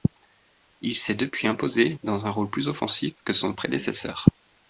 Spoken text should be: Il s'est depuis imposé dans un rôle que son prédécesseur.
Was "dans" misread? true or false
false